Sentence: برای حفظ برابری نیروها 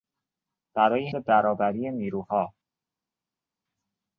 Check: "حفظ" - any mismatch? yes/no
yes